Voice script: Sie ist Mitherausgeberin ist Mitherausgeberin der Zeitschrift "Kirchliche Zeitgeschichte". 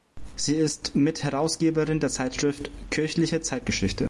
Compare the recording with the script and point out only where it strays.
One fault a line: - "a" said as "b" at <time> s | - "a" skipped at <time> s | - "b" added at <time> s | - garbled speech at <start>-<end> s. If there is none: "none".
- "ist Mitherausgeberin" skipped at 2.0 s